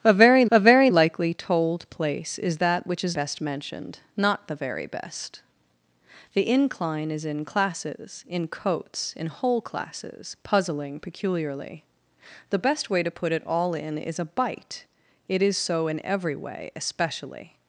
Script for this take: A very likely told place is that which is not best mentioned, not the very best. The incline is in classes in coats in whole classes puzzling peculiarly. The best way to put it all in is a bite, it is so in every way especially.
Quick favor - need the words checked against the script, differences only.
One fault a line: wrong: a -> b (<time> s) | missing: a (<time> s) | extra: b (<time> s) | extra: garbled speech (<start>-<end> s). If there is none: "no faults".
extra: a very (0.5 s)
missing: not (3.2 s)